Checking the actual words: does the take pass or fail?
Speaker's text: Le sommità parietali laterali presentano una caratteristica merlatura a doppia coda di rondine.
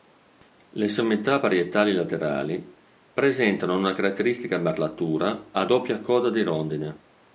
pass